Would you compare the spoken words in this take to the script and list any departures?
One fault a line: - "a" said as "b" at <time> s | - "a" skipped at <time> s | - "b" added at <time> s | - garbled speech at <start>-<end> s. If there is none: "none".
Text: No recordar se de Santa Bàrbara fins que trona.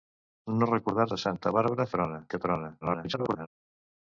- "se" skipped at 1.1 s
- "fins" said as "trona" at 2.0 s
- garbled speech at 2.8-3.5 s